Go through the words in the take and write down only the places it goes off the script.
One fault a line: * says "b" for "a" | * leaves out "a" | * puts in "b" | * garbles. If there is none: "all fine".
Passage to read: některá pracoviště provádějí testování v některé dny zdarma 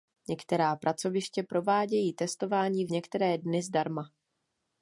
all fine